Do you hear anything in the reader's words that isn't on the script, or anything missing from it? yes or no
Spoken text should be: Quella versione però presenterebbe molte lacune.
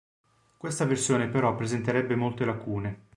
yes